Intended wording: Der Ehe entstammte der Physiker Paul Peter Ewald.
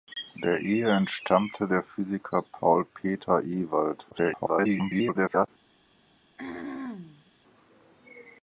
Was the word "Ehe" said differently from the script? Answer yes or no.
no